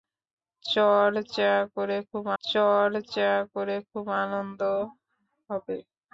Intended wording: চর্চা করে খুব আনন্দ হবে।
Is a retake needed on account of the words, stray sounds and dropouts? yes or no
yes